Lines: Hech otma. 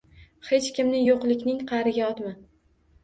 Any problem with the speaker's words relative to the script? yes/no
yes